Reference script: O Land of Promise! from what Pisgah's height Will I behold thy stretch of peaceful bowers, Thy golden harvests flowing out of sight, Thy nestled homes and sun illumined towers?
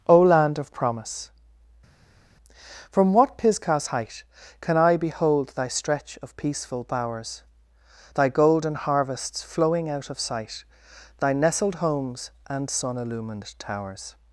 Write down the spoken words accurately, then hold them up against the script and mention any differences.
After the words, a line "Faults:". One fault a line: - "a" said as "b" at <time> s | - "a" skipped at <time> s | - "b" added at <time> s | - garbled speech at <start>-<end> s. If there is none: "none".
O Land of Promise! from what Pisgah's height Can I behold thy stretch of peaceful bowers, Thy golden harvests flowing out of sight, Thy nestled homes and sun illumined towers?
Faults:
- "Will" said as "Can" at 4.6 s